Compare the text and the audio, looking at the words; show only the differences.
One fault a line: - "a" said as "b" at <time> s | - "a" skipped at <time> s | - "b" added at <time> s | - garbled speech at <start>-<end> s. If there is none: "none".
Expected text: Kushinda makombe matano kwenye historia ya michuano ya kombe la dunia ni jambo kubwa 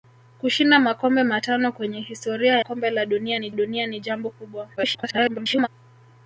- "ya michuano ya kombe la" said as "kombe la dunia ni" at 2.6 s
- garbled speech at 4.8-5.7 s